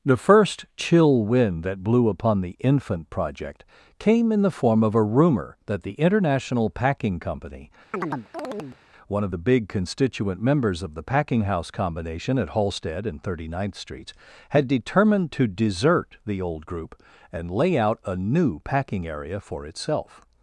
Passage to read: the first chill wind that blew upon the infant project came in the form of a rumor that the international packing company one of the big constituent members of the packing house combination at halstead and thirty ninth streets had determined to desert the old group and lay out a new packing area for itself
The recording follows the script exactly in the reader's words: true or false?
true